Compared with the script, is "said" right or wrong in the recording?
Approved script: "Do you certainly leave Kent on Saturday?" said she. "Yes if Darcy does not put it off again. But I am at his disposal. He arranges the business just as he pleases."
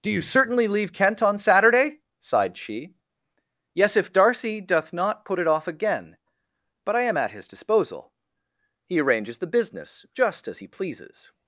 wrong